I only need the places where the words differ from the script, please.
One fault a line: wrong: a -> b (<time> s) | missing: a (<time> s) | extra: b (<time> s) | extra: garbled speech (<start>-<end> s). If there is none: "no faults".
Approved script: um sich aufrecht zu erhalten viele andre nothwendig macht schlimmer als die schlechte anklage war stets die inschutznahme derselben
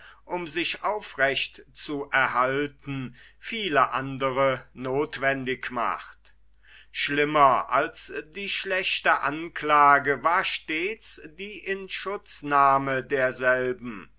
no faults